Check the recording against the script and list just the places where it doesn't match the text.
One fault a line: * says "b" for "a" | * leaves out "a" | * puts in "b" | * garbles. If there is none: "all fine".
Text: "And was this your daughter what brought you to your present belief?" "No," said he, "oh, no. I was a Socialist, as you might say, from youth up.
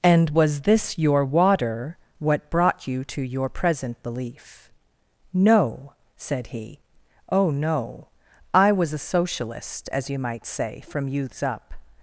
* says "water" for "daughter"
* says "youths" for "youth"